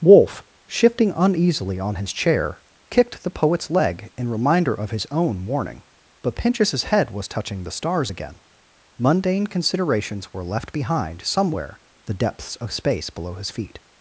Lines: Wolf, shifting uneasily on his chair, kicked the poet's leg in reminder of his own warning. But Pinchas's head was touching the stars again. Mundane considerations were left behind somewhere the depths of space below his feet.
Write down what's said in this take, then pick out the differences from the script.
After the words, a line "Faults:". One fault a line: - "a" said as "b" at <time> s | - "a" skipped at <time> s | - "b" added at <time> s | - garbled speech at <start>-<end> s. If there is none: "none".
Wolf, shifting uneasily on his chair, kicked the poet's leg in reminder of his own warning. But Pinchas's head was touching the stars again. Mundane considerations were left behind somewhere the depths of space below his feet.
Faults:
none